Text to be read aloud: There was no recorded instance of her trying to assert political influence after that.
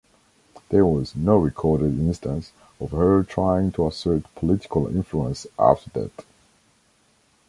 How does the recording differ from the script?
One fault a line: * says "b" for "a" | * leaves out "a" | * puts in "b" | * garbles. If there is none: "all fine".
all fine